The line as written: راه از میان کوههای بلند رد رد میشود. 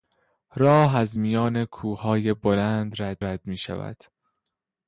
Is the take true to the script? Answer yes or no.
yes